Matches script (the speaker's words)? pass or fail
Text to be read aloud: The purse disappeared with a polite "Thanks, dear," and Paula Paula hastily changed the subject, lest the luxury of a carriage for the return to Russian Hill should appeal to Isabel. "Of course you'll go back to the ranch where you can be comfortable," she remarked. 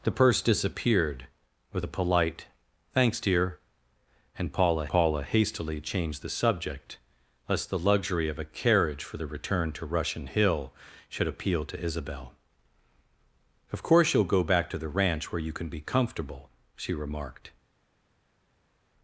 pass